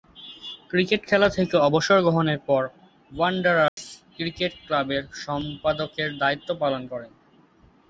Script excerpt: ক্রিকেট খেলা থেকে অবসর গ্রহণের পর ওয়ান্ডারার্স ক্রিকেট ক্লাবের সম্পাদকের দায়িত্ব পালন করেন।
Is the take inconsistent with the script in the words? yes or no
no